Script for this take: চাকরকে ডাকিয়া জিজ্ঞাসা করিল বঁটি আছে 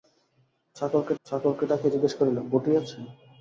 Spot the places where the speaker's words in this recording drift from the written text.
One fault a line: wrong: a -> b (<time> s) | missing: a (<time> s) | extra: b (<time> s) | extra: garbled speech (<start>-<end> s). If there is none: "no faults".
extra: চাকরকে (1.3 s)